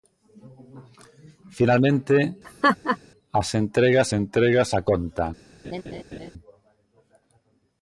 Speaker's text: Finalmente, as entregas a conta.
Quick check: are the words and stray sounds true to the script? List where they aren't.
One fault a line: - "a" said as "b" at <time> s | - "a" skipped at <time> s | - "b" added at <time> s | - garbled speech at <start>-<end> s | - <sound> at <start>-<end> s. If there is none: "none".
- laugh at 2.4-3.0 s
- "entregas" added at 4.2 s
- laugh at 5.6-6.3 s